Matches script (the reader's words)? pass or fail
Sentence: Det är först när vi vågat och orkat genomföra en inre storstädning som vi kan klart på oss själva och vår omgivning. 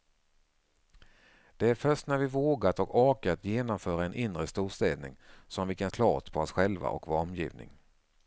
pass